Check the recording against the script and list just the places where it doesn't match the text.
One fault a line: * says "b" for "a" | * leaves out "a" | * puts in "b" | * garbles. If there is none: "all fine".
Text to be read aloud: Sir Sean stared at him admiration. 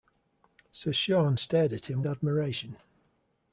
all fine